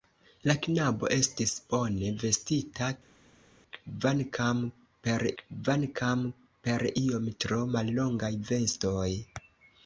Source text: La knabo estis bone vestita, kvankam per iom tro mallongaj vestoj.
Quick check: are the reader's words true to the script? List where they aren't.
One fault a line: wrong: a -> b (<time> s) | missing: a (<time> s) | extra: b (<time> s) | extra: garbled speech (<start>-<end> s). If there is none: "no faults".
extra: kvankam per (5.4 s)